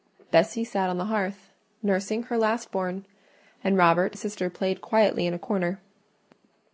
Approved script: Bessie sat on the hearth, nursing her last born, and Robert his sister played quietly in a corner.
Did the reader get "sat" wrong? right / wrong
right